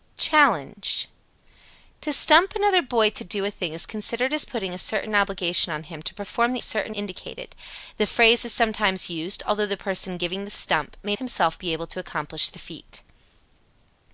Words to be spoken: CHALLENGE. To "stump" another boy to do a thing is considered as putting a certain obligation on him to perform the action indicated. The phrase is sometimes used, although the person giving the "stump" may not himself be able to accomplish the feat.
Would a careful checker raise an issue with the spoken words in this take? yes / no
yes